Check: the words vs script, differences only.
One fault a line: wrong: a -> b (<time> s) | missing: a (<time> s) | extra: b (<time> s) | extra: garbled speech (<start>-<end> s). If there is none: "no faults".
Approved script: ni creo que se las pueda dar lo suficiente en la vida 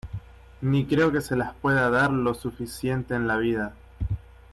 no faults